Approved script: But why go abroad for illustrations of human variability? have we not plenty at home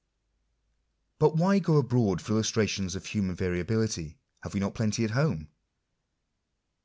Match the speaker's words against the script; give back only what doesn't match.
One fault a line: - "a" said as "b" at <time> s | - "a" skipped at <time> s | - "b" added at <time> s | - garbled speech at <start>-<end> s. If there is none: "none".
none